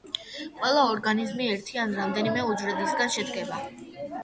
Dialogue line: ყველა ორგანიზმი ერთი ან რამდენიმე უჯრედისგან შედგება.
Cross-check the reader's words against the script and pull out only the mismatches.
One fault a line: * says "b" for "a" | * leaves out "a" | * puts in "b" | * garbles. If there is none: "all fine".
all fine